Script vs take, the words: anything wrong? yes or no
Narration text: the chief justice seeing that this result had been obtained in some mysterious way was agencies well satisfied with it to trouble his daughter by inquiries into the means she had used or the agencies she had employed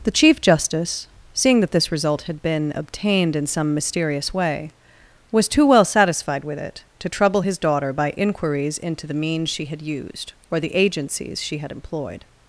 yes